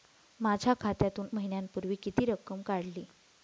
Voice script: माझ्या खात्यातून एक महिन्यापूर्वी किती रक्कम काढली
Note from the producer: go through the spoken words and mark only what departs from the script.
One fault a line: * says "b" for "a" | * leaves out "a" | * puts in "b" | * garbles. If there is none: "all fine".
* leaves out "एक"